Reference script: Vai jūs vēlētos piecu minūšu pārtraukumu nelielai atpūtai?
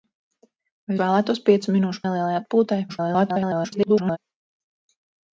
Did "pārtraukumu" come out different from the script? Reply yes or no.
yes